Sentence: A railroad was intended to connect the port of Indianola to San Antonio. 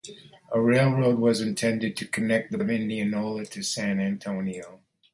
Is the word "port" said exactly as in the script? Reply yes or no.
no